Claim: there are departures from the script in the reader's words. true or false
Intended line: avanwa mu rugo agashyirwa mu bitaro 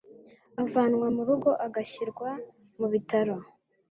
false